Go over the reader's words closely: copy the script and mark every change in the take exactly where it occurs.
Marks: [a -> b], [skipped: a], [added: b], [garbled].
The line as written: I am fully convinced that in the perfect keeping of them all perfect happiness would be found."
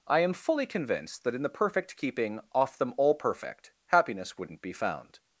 I am fully convinced that in the perfect keeping [of -> off] them all perfect happiness [would -> wouldn't] be found."